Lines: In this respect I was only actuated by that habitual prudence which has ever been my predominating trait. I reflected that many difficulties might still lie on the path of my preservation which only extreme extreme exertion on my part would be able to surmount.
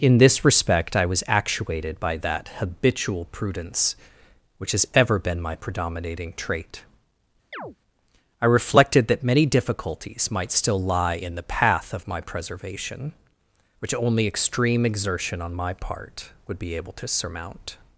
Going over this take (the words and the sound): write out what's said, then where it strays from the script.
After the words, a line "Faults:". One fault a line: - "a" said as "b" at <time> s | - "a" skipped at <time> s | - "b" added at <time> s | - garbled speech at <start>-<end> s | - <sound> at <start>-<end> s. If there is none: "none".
In this respect I was actuated by that habitual prudence which has ever been my predominating trait. I reflected that many difficulties might still lie in the path of my preservation which only extreme exertion on my part would be able to surmount.
Faults:
- "only" skipped at 1.2 s
- chirp at 7.5-7.8 s
- "on" said as "in" at 11.1 s
- "extreme" skipped at 14.8 s